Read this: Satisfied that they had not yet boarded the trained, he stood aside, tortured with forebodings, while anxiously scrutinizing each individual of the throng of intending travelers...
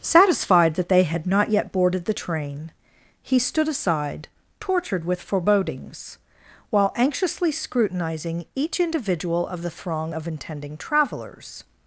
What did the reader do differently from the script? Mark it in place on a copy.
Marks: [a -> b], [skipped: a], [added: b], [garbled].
Satisfied that they had not yet boarded the [trained, -> train] he stood aside, tortured with forebodings, while anxiously scrutinizing each individual of the throng of intending travelers...